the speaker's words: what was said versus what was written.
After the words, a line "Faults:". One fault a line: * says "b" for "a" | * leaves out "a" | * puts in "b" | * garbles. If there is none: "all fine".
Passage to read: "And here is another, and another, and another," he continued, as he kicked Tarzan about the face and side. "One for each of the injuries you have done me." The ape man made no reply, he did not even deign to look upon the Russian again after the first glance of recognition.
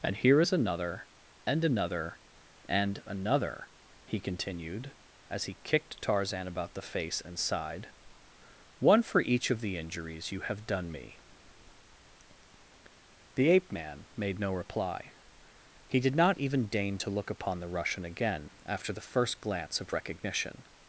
"And here is another, and another, and another," he continued, as he kicked Tarzan about the face and side. "One for each of the injuries you have done me." The ape man made no reply, he did not even deign to look upon the Russian again after the first glance of recognition.
Faults:
all fine